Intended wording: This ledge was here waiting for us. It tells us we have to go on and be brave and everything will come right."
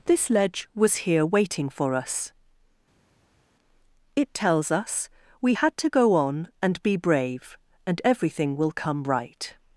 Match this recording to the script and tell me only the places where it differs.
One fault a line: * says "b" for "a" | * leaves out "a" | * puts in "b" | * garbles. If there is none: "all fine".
* says "had" for "have"